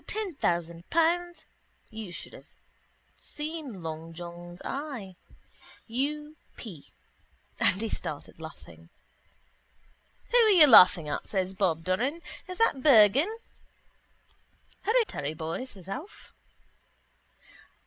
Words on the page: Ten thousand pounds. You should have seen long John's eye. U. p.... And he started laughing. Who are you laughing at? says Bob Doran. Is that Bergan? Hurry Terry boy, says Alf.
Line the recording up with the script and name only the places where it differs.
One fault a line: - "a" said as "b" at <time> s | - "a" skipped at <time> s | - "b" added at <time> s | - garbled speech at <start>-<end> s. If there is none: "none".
none